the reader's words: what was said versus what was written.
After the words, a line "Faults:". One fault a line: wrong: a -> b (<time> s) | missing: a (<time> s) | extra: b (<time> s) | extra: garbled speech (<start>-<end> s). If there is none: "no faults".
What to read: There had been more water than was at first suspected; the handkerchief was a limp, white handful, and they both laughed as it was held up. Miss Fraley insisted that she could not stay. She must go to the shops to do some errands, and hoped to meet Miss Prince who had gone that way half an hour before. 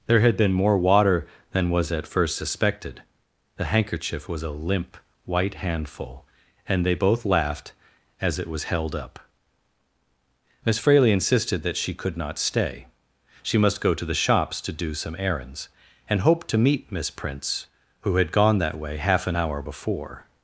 There had been more water than was at first suspected; the handkerchief was a limp, white handful, and they both laughed as it was held up. Miss Fraley insisted that she could not stay. She must go to the shops to do some errands, and hoped to meet Miss Prince who had gone that way half an hour before.
Faults:
no faults